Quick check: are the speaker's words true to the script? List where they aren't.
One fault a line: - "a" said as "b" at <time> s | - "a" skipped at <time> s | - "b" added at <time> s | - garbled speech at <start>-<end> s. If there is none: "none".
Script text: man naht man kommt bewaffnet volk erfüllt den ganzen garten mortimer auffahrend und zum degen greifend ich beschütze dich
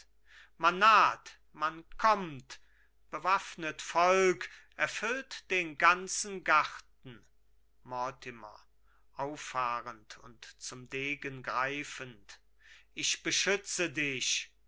none